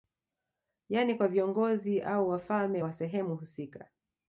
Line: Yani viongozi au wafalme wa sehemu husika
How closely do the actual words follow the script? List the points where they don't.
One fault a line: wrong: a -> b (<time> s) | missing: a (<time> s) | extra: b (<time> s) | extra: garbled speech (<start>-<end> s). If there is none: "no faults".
extra: kwa (1.1 s)